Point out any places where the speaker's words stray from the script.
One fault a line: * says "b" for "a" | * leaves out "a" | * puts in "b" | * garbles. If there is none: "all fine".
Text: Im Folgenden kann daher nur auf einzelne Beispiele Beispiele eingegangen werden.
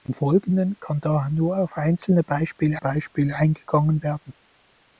all fine